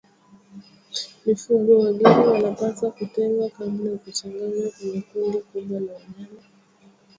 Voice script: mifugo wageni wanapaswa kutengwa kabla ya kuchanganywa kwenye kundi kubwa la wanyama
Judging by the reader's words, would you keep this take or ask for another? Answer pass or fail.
pass